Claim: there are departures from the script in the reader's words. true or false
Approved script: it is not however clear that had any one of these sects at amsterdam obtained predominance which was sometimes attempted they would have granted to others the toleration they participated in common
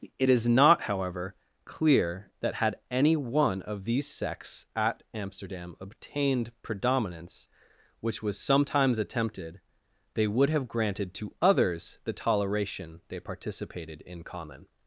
false